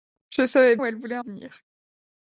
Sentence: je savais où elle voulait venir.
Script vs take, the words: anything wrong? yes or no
no